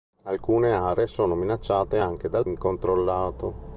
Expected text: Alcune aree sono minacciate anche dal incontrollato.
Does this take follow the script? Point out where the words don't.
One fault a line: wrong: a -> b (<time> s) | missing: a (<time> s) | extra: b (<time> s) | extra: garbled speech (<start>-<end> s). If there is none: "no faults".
no faults